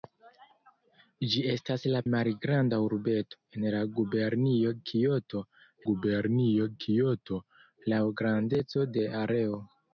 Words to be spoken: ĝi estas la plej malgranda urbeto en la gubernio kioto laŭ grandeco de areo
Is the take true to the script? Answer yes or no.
no